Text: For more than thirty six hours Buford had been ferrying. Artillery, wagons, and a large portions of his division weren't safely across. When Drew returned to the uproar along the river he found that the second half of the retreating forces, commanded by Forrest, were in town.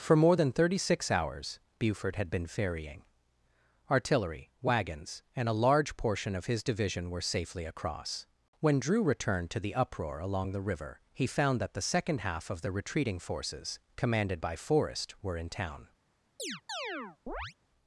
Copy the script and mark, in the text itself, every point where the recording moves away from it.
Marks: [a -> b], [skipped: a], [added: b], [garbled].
For more than thirty six hours Buford had been ferrying. Artillery, wagons, and a large [portions -> portion] of his division [weren't -> were] safely across. When Drew returned to the uproar along the river he found that the second half of the retreating forces, commanded by Forrest, were in town.